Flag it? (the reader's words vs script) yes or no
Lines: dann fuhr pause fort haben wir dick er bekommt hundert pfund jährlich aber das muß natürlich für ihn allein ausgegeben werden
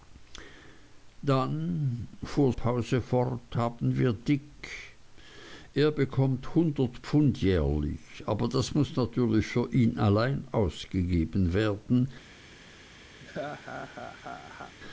no